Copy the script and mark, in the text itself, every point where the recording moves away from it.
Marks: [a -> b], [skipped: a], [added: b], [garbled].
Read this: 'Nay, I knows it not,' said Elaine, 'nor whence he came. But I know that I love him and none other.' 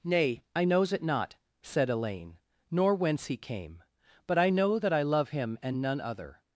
'Nay, I knows it not,' said Elaine, 'nor whence he came. But I know that I love him and none other.'